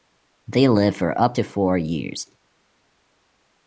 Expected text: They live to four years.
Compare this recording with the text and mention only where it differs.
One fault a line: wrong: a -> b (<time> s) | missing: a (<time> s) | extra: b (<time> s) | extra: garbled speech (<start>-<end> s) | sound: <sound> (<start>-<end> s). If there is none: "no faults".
extra: for up (0.9 s)